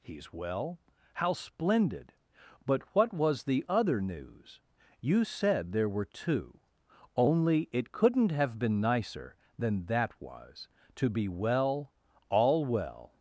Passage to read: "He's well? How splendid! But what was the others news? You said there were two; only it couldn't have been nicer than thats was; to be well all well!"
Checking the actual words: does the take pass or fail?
fail